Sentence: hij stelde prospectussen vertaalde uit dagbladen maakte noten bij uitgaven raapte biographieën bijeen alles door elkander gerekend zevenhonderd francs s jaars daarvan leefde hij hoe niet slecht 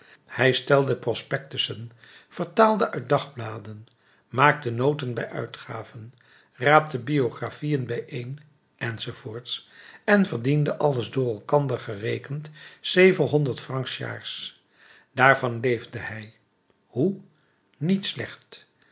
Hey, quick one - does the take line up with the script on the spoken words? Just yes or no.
no